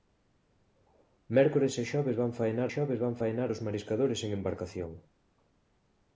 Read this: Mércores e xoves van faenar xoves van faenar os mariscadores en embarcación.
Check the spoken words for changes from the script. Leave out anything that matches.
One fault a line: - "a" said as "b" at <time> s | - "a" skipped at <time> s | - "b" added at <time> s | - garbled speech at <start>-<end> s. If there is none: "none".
none